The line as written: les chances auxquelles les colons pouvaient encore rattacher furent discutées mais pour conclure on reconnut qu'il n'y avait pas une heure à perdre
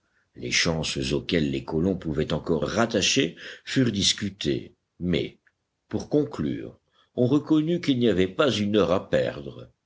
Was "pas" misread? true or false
false